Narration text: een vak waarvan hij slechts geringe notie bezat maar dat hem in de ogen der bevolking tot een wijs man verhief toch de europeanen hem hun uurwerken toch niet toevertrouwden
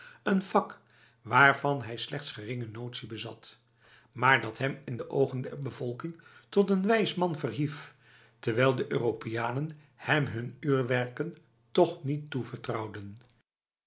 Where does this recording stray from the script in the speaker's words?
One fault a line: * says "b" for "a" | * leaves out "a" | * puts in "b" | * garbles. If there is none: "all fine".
* says "terwijl" for "toch"